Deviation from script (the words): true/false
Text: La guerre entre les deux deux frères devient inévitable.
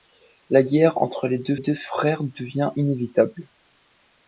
false